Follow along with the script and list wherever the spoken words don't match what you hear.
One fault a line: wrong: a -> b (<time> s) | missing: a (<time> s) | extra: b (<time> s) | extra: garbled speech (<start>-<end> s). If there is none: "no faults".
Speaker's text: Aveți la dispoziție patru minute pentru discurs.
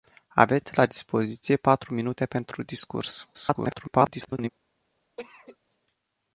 extra: garbled speech (3.3-4.5 s)